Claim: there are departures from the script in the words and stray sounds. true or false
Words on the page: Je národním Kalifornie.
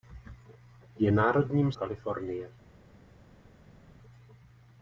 false